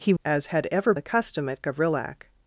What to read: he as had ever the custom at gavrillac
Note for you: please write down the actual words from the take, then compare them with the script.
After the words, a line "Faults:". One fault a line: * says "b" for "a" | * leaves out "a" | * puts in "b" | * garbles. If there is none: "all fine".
he as had ever the custom at gavrillac
Faults:
all fine